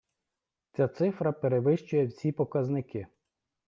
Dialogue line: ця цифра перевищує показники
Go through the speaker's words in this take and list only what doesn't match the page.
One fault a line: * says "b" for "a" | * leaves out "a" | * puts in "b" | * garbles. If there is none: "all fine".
* puts in "всі"